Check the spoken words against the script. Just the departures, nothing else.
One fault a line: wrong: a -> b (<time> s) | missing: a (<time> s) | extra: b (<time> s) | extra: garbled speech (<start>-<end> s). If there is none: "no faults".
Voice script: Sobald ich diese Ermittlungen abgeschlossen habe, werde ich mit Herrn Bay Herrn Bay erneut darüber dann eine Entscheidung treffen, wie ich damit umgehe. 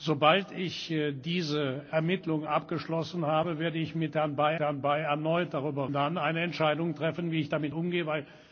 no faults